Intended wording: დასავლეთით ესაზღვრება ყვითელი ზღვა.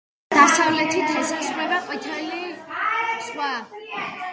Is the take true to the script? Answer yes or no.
yes